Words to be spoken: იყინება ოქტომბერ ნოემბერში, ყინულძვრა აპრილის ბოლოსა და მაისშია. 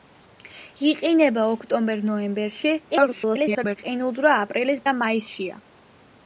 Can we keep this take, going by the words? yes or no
no